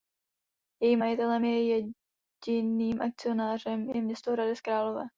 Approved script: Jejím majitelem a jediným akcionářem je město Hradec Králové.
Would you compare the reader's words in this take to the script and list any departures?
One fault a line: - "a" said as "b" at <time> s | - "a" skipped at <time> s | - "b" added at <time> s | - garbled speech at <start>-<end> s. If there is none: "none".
none